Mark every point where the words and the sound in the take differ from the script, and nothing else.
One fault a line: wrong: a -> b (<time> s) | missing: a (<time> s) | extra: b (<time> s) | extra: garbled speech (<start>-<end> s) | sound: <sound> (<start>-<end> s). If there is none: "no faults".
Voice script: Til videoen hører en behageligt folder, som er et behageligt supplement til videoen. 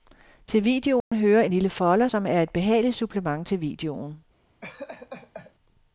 sound: dropout (1.0-1.1 s)
wrong: behageligt -> lille (1.5 s)
sound: laugh (4.6-5.5 s)